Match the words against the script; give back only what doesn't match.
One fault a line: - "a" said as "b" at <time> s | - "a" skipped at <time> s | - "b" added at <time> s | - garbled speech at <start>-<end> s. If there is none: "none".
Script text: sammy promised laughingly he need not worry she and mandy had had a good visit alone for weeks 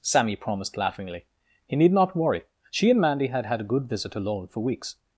none